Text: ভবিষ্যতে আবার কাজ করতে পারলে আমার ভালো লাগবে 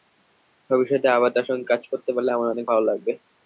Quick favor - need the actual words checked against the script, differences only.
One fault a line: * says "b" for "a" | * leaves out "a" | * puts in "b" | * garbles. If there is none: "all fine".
* puts in "তাঁর সঙ্গে"
* puts in "অনেক"